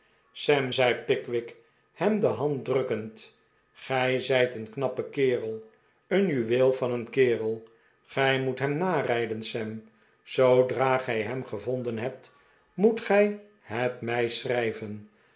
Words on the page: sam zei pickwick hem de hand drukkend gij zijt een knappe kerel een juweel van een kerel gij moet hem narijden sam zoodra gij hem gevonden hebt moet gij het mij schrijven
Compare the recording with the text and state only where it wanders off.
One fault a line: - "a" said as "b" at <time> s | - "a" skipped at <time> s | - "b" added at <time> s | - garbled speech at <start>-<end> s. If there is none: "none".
none